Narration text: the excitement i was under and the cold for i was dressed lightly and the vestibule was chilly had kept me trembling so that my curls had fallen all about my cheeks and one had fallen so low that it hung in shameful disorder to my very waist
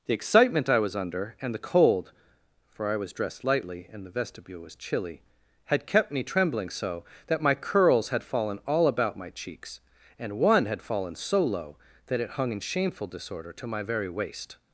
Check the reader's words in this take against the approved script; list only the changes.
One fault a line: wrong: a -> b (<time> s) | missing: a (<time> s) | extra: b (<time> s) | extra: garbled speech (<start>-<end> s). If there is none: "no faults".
no faults